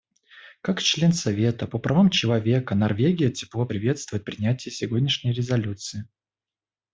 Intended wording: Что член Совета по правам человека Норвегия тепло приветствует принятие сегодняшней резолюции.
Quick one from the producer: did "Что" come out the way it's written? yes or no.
no